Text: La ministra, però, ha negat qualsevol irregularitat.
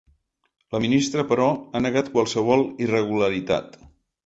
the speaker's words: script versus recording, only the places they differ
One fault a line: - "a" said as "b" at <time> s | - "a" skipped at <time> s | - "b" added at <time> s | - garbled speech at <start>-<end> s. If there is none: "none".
none